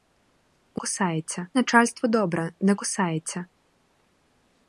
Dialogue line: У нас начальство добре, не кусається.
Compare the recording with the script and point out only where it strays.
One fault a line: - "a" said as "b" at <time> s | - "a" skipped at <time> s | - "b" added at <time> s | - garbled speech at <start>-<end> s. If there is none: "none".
- "нас" said as "кусається" at 0.7 s